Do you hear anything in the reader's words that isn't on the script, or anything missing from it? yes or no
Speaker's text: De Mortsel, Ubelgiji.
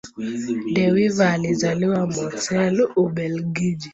yes